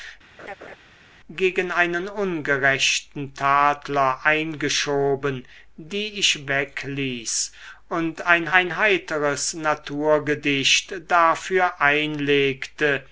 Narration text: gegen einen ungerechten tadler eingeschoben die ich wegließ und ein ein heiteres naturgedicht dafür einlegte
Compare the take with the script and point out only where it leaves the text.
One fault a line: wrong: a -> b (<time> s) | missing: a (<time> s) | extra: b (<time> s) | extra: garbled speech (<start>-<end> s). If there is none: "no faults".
no faults